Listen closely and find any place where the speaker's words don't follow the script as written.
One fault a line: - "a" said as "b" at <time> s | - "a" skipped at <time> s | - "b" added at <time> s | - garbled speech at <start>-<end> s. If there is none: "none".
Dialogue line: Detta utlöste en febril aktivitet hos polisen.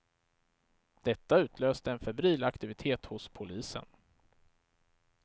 none